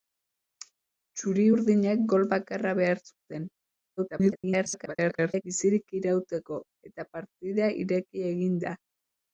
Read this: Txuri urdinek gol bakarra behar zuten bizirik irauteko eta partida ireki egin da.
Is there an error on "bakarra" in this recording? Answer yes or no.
no